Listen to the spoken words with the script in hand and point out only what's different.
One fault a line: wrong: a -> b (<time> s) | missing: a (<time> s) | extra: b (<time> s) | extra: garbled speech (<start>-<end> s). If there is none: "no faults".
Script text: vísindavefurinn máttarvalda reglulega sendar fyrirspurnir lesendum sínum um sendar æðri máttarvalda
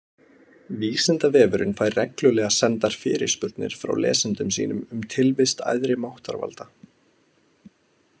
wrong: máttarvalda -> fær (1.8 s)
extra: frá (3.8 s)
wrong: sendar -> tilvist (5.2 s)